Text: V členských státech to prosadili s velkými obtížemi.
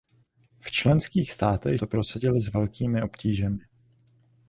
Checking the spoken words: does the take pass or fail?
pass